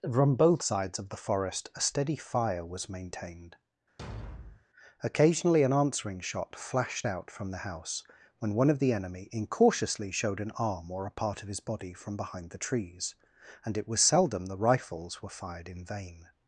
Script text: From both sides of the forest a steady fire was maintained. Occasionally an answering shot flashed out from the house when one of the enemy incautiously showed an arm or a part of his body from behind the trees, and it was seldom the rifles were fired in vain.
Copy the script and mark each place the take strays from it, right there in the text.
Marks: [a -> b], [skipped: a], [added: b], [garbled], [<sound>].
From both sides of the forest a steady fire was maintained. [thud] Occasionally an answering shot flashed out from the house when one of the enemy incautiously showed an arm or a part of his body from behind the trees, and it was seldom the rifles were fired in vain.